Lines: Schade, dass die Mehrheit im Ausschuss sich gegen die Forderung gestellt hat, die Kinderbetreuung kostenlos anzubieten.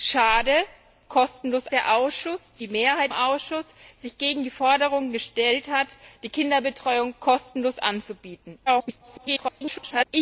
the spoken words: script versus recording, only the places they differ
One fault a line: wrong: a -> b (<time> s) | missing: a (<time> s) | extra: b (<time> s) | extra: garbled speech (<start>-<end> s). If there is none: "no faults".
wrong: dass -> kostenlos (1.1 s)
missing: im (3.1 s)
extra: garbled speech (8.7-10.1 s)